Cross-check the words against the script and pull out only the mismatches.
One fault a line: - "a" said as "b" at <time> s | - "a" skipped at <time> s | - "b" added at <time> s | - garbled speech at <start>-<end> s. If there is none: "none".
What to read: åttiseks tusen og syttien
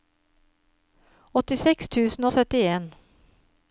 none